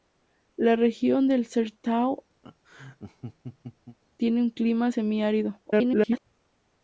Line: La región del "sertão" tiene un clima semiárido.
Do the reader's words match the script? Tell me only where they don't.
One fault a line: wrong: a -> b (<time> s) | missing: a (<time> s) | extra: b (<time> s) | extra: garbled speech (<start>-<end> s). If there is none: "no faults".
extra: garbled speech (5.7-6.3 s)